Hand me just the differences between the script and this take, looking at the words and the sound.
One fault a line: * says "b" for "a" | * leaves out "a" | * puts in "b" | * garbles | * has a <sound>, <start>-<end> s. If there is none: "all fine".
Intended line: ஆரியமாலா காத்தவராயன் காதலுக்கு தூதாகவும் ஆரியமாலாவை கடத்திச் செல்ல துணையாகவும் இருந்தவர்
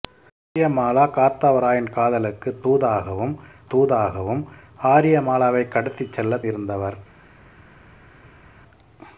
* puts in "தூதாகவும்"
* leaves out "துணையாகவும்"